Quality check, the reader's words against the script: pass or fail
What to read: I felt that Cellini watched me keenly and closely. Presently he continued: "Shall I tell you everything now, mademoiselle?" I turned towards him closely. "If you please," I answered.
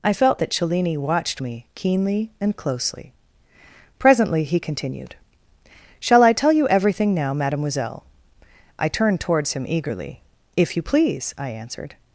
fail